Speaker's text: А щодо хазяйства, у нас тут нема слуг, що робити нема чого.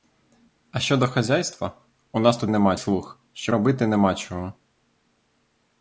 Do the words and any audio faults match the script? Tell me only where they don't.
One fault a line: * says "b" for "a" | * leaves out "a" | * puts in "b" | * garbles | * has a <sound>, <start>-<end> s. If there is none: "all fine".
all fine